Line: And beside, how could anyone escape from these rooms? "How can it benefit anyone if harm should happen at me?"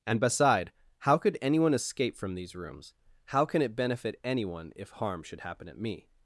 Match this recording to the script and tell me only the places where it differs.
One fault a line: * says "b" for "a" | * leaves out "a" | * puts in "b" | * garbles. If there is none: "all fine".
all fine